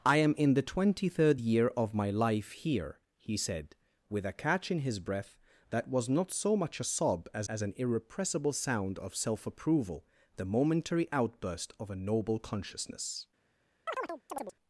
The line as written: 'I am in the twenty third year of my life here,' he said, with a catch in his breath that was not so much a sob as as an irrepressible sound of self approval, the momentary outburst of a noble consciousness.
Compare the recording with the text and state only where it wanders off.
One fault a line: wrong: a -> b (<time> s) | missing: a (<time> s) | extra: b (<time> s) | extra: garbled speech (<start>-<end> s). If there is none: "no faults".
no faults